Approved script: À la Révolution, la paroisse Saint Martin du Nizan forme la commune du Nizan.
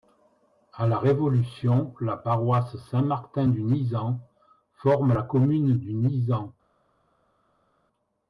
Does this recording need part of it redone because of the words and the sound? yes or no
no